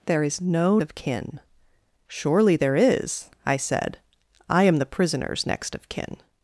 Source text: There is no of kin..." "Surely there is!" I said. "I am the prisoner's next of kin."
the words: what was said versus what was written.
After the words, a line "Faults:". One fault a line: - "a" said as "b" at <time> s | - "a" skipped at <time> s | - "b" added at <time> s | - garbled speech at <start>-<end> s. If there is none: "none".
There is no of kin..." "Surely there is!" I said. "I am the prisoner's next of kin."
Faults:
none